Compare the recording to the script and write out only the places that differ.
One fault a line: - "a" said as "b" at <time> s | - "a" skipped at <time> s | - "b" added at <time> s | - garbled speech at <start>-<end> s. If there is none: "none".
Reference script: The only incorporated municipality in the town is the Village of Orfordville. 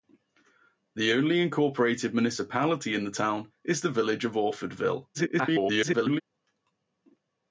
- garbled speech at 5.1-6.2 s